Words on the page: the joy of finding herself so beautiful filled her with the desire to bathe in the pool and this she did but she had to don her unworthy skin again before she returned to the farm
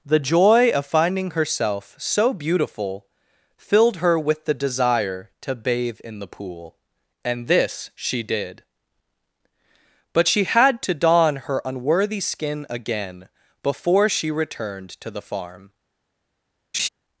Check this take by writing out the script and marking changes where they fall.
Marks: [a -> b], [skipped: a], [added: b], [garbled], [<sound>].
the joy of finding herself so beautiful filled her with the desire to bathe in the pool and this she did but she had to don her unworthy skin again before she returned to the farm [laugh]